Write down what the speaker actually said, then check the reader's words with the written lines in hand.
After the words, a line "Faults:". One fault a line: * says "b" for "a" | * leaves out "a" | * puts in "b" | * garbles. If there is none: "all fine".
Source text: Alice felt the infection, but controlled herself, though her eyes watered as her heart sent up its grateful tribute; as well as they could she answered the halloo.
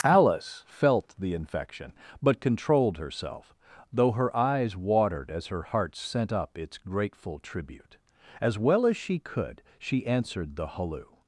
Alice felt the infection, but controlled herself, though her eyes watered as her heart sent up its grateful tribute; as well as she could she answered the halloo.
Faults:
* says "she" for "they"